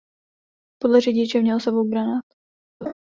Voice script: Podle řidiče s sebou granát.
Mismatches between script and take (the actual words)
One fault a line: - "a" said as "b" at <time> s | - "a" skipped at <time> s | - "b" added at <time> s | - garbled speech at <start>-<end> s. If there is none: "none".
- "měl" added at 1.4 s